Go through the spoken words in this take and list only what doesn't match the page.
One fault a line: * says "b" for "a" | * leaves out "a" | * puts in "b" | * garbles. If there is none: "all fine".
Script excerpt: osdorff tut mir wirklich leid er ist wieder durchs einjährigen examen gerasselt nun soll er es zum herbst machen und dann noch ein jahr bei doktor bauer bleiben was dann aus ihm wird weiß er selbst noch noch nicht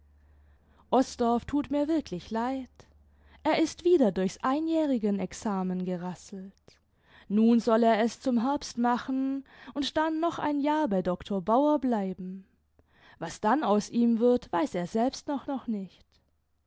all fine